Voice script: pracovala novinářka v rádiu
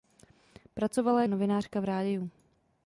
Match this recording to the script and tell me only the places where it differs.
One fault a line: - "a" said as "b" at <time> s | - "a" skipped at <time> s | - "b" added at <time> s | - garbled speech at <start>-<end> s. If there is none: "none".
none